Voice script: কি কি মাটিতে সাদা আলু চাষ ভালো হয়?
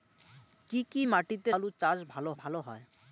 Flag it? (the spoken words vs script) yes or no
yes